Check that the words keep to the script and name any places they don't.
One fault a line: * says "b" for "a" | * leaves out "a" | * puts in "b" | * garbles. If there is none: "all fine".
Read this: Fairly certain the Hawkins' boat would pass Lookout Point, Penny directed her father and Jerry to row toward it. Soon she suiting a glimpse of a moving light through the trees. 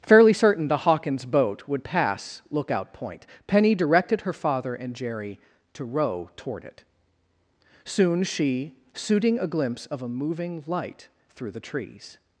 all fine